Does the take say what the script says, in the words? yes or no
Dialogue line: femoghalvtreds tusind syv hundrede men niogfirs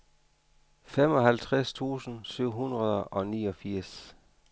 no